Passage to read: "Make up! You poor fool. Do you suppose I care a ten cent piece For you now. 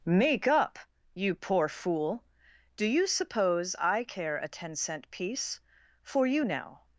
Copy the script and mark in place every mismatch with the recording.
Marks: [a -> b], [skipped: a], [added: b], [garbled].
"Make up! You poor fool. Do you suppose I care a ten cent piece For you now.